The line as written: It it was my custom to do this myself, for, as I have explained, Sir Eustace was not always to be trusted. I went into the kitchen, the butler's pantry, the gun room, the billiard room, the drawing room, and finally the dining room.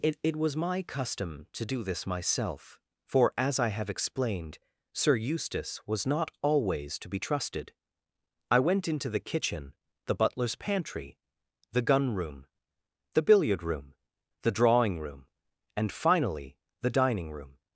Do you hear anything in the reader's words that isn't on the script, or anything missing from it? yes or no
no